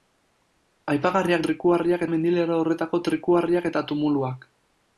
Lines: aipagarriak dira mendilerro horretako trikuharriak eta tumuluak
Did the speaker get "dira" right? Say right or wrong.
wrong